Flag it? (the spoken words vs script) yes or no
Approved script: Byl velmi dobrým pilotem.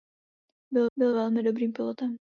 yes